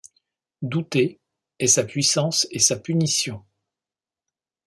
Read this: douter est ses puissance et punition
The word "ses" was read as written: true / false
false